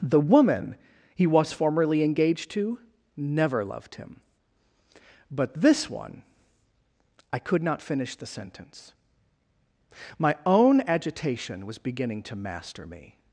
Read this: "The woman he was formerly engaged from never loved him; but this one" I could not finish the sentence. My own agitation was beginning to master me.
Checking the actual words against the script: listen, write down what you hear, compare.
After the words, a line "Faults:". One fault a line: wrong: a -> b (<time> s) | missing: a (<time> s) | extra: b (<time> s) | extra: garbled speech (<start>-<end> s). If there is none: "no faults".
"The woman he was formerly engaged to never loved him; but this one" I could not finish the sentence. My own agitation was beginning to master me.
Faults:
wrong: from -> to (2.5 s)